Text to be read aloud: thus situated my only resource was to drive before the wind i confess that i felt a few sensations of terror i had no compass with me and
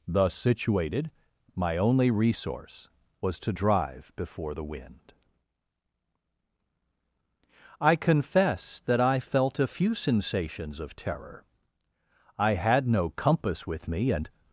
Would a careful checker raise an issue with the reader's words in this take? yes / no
no